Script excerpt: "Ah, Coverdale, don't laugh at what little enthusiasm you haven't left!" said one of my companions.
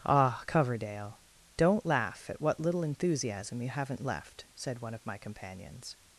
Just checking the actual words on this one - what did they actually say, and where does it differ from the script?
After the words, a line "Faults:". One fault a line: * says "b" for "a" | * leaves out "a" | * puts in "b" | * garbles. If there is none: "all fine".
"Ah, Coverdale, don't laugh at what little enthusiasm you haven't left!" said one of my companions.
Faults:
all fine